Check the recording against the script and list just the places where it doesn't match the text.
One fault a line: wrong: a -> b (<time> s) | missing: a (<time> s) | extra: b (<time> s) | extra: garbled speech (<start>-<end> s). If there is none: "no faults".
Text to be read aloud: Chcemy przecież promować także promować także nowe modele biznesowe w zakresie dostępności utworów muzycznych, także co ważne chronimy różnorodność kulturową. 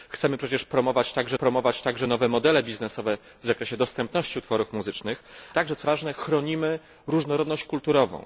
no faults